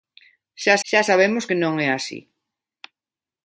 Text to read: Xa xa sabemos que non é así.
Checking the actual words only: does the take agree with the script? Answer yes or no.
yes